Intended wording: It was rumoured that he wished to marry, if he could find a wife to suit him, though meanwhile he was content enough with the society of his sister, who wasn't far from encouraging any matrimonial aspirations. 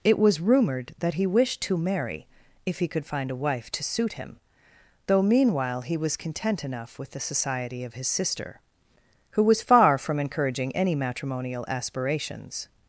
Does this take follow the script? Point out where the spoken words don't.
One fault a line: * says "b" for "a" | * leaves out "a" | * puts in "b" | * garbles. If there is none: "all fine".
* says "was" for "wasn't"